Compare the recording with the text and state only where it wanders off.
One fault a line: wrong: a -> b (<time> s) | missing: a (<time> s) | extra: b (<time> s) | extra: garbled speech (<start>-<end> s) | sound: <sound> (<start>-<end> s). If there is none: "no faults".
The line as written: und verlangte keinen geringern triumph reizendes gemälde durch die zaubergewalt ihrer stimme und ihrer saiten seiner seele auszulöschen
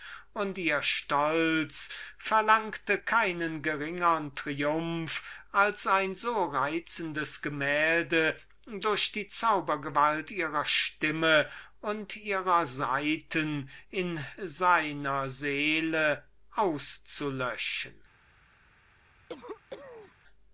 extra: ihr stolz (0.6 s)
extra: als ein so (5.5 s)
extra: in (13.9 s)
sound: cough (19.3-20.2 s)